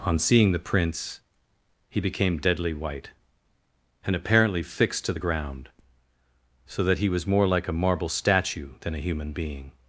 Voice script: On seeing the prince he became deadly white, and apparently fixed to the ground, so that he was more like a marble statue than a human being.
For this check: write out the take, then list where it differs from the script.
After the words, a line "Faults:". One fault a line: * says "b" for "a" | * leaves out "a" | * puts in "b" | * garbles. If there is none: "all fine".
On seeing the prince he became deadly white, and apparently fixed to the ground, so that he was more like a marble statue than a human being.
Faults:
all fine